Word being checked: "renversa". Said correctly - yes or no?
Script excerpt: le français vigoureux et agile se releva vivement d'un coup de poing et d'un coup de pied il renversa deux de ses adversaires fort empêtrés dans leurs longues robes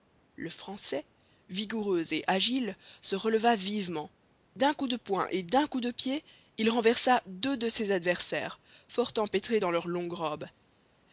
yes